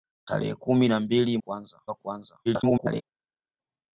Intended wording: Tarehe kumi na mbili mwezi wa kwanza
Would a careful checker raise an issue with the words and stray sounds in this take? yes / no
yes